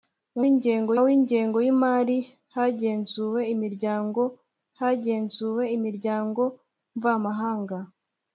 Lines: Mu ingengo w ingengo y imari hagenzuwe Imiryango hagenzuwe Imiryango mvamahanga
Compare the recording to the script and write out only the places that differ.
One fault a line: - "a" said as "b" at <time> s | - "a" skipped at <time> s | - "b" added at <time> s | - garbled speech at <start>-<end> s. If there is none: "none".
none